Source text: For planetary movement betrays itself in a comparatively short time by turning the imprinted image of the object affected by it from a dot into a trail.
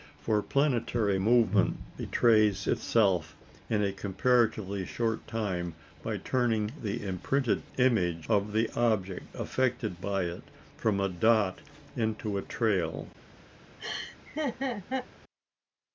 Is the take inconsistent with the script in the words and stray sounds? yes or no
yes